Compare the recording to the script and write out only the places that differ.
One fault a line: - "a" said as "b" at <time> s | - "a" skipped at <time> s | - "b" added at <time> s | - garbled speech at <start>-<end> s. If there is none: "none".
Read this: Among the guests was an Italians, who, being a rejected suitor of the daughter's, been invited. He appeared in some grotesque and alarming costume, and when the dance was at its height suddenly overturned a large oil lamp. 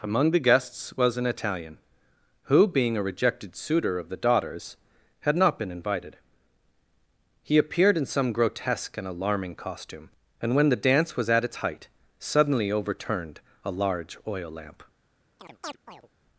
- "Italians" said as "Italian" at 1.3 s
- "had not" added at 5.2 s